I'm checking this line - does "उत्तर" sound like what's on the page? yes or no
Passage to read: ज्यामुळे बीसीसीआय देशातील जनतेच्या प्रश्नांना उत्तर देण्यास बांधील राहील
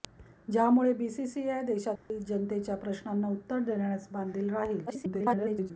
yes